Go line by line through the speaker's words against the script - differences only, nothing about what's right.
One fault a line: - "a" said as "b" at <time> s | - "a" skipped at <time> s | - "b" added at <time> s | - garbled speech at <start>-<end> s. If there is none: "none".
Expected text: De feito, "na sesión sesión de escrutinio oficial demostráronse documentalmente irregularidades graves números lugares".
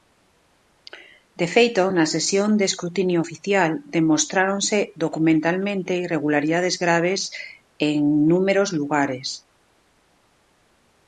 - "sesión" skipped at 2.5 s
- "en" added at 7.9 s